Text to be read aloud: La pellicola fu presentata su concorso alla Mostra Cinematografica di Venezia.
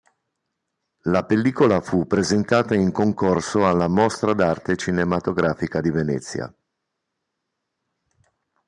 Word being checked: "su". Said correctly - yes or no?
no